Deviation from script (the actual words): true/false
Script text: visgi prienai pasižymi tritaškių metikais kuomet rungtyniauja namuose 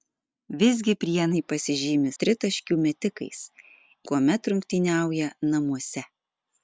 false